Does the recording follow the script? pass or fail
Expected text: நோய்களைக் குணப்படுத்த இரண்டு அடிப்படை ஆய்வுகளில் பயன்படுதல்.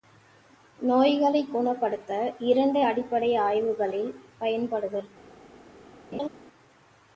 pass